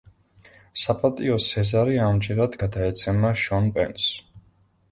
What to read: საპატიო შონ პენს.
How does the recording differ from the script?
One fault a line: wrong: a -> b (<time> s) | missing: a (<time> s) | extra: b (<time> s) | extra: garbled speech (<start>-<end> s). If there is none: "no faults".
extra: სეზარი ამჯერად გადაეცემა (1.5 s)